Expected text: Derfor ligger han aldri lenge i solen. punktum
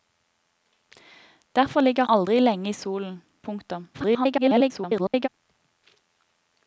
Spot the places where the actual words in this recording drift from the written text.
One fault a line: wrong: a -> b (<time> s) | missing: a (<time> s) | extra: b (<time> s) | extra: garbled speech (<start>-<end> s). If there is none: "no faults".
missing: han (2.0 s)
extra: garbled speech (3.9-5.3 s)